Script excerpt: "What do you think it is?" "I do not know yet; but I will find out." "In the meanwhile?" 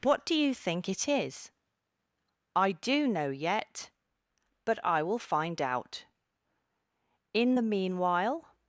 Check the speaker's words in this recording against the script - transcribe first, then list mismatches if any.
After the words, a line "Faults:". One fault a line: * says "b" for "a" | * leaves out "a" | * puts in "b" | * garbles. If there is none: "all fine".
"What do you think it is?" "I do know yet; but I will find out." "In the meanwhile?"
Faults:
* leaves out "not"